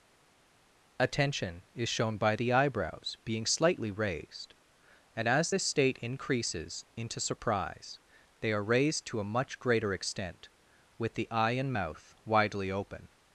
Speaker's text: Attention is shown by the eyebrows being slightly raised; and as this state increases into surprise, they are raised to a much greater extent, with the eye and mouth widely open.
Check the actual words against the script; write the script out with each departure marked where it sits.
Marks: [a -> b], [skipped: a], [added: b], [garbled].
Attention is shown by the eyebrows being slightly raised; and as this state increases into surprise, they are raised to a much greater extent, with the eye and mouth widely open.